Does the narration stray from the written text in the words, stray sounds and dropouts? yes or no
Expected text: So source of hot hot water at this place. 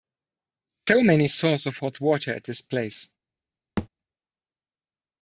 yes